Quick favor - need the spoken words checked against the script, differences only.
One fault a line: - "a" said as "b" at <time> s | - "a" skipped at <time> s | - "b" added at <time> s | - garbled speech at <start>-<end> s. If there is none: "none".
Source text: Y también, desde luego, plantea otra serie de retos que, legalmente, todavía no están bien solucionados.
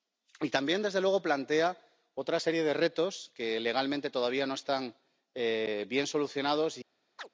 none